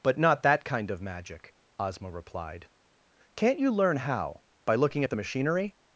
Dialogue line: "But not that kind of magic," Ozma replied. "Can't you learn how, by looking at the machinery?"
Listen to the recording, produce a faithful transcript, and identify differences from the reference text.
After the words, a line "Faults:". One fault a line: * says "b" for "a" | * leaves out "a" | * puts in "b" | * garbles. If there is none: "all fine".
"But not that kind of magic," Ozma replied. "Can't you learn how, by looking at the machinery?"
Faults:
all fine